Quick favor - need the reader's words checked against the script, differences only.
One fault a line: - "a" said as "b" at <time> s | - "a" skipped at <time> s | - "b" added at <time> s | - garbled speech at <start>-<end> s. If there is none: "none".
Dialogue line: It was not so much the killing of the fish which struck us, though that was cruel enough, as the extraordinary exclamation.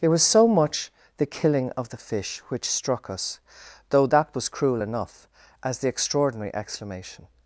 - "not" skipped at 0.2 s